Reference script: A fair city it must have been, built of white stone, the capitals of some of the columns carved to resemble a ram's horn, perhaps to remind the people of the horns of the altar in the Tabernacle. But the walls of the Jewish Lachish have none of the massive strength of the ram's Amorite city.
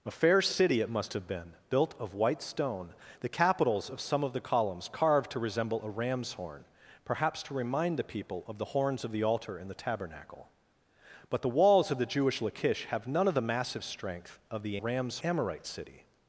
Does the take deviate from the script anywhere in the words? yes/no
no